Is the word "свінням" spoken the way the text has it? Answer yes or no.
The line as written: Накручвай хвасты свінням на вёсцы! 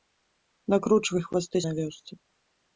no